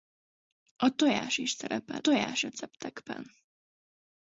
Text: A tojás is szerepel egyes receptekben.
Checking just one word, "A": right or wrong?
right